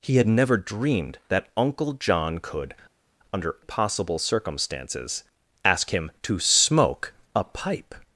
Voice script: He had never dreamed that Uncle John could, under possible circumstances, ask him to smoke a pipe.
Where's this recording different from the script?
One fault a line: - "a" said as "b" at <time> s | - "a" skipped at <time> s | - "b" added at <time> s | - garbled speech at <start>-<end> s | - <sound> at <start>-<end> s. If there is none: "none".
none